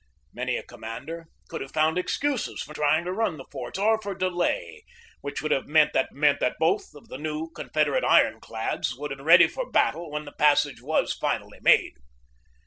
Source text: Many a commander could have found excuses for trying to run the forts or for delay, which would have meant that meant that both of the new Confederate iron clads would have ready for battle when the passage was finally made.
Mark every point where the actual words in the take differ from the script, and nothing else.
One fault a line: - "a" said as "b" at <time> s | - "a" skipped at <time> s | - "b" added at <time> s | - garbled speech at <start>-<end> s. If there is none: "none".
none